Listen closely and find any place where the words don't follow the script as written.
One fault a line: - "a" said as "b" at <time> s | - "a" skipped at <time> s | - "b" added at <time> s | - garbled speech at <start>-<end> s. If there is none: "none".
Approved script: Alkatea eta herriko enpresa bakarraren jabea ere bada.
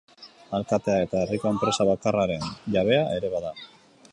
none